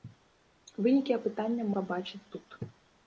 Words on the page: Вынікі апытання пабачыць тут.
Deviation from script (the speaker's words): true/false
false